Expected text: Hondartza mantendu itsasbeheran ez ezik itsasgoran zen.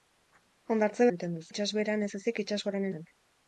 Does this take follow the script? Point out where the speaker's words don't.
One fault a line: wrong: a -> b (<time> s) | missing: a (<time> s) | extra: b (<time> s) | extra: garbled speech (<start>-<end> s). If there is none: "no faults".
no faults